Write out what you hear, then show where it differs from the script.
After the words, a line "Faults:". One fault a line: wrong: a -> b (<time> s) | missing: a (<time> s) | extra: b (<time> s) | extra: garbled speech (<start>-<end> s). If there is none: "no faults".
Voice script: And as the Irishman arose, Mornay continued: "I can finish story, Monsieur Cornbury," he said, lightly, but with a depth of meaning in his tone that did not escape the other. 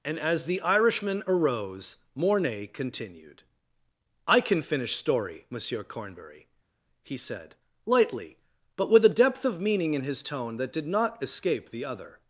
And as the Irishman arose, Mornay continued: "I can finish story, Monsieur Cornbury," he said, lightly, but with a depth of meaning in his tone that did not escape the other.
Faults:
no faults